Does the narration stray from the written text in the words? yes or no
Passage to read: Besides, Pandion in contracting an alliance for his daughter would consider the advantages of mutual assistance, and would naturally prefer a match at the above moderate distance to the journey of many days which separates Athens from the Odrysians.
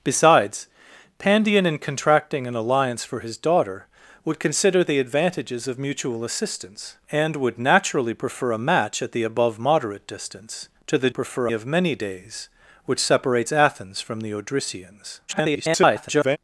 yes